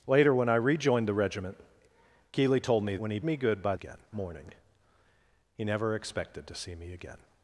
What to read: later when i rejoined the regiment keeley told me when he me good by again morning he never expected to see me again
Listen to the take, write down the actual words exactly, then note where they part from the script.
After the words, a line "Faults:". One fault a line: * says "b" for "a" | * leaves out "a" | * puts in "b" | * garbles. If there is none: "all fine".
later when i rejoined the regiment keeley told me when he me good by again morning he never expected to see me again
Faults:
all fine